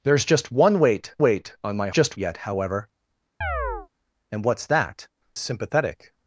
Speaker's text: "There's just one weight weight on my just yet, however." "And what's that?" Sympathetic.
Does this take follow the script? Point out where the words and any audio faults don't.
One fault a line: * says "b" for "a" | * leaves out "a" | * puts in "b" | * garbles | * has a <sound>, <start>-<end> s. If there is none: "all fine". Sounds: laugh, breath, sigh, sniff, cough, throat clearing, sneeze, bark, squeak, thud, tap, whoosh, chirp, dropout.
* has a chirp, 3.4-3.9 s